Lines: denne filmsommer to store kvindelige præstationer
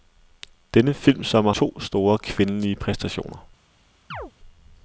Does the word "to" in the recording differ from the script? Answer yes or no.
no